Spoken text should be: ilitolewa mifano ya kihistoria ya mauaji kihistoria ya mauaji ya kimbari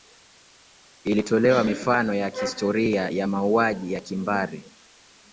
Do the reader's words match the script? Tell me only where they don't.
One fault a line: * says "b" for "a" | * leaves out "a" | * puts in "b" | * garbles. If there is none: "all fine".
* leaves out "kihistoria ya mauaji"